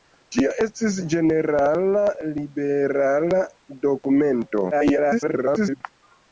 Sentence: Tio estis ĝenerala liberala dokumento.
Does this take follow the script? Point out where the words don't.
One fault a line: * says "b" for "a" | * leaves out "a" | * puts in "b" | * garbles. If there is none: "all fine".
* garbles